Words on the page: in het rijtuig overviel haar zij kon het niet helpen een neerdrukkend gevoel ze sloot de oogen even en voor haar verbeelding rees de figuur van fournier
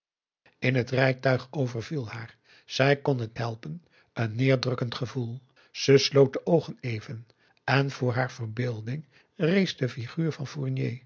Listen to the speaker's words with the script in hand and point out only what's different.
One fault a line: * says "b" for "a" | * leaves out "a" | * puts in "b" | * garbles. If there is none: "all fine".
* leaves out "niet"